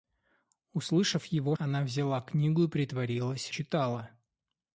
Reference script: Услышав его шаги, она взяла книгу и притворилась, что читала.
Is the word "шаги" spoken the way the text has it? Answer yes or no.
no